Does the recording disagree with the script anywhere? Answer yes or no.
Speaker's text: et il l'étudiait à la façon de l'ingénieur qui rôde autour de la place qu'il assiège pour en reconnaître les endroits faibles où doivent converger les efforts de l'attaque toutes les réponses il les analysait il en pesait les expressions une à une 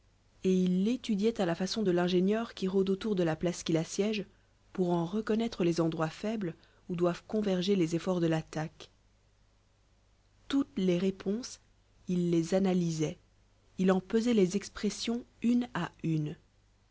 no